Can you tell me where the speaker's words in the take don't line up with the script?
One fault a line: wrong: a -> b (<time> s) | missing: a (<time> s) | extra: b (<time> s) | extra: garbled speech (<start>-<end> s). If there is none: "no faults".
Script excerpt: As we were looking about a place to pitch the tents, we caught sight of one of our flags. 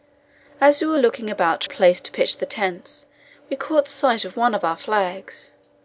no faults